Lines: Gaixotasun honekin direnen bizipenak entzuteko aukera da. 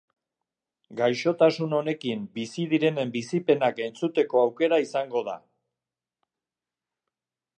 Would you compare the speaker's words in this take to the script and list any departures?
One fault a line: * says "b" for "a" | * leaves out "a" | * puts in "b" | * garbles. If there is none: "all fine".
* puts in "bizi"
* puts in "izango"